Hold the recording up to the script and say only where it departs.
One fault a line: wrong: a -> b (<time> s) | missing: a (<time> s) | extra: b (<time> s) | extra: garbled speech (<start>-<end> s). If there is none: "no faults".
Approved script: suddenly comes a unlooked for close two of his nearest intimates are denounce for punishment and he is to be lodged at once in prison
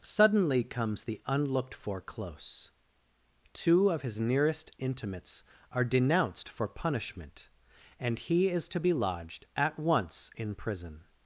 wrong: a -> the (1.0 s)
wrong: denounce -> denounced (5.8 s)